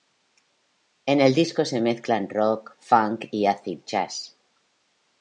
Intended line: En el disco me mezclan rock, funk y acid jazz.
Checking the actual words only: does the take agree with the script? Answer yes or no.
no